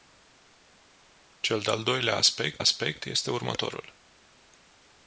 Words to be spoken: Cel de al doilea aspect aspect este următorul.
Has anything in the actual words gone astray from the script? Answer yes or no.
no